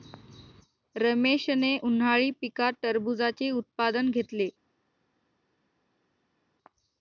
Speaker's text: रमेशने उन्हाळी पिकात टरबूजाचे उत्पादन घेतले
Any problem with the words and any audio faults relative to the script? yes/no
no